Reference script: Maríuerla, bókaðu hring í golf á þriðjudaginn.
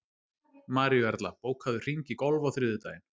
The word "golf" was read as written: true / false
true